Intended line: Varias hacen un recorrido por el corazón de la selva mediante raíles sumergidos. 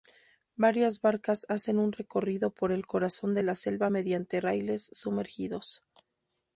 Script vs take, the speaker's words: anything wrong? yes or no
yes